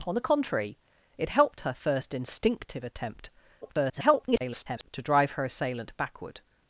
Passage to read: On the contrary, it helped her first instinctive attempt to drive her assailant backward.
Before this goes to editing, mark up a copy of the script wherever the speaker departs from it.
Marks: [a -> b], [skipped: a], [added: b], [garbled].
On the contrary, it helped her first instinctive attempt [garbled] to drive her assailant backward.